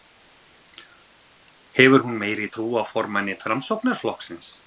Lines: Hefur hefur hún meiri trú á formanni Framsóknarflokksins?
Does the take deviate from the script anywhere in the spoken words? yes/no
yes